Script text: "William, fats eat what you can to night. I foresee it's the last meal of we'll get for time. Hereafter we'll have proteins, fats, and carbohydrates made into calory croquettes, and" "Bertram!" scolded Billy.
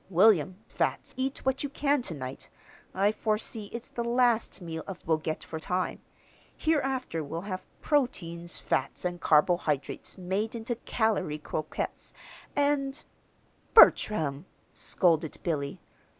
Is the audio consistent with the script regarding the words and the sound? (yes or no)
yes